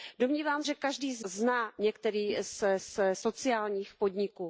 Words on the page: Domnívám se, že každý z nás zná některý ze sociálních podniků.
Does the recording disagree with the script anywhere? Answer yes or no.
yes